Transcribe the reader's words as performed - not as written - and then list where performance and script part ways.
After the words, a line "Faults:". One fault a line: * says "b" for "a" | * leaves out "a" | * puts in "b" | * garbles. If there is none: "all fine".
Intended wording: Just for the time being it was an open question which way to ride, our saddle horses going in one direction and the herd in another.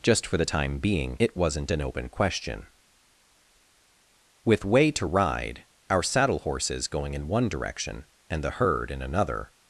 Just for the time being it wasn't an open question with way to ride, our saddle horses going in one direction and the herd in another.
Faults:
* says "wasn't" for "was"
* says "with" for "which"